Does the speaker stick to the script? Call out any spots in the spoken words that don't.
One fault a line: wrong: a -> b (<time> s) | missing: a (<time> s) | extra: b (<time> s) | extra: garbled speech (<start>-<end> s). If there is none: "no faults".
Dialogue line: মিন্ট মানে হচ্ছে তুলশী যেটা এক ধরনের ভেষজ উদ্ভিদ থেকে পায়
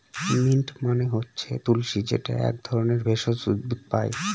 missing: থেকে (3.8 s)